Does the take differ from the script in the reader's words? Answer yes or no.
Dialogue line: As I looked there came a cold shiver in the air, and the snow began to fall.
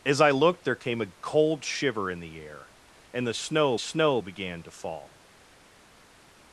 yes